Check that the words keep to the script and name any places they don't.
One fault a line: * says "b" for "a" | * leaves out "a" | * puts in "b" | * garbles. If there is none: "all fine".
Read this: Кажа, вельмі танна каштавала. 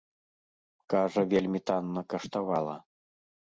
all fine